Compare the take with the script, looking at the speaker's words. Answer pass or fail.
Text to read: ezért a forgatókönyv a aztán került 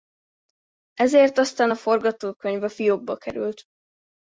fail